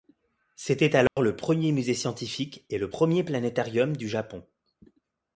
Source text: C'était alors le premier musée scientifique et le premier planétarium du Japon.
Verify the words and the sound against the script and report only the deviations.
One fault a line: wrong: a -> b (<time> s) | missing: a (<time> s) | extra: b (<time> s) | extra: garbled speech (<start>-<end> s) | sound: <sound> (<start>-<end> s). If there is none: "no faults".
sound: dropout (1.1-1.2 s)